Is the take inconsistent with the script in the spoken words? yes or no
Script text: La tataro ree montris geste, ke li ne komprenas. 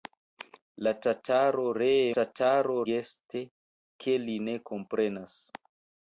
yes